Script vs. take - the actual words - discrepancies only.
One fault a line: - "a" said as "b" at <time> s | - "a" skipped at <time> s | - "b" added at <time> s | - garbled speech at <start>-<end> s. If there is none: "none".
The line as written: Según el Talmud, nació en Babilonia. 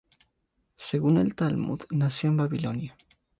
none